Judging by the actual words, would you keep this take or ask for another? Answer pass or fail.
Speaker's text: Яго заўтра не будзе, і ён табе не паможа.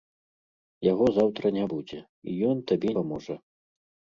fail